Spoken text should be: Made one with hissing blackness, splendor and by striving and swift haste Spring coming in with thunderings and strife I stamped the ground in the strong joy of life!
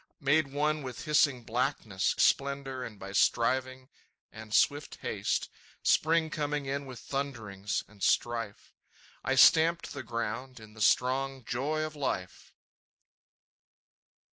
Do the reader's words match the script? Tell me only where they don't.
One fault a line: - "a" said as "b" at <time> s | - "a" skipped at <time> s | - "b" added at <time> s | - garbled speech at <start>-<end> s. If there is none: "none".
none